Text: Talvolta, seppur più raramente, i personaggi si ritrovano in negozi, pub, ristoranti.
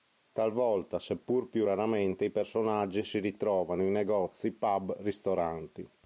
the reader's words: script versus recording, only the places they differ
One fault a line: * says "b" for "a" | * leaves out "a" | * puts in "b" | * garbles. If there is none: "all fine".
all fine